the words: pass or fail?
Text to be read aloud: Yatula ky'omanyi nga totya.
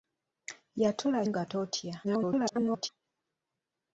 fail